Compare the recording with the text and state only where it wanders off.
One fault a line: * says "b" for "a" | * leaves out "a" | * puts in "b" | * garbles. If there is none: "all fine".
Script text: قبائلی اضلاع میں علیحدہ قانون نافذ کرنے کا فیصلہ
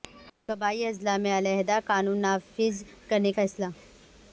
* leaves out "کا"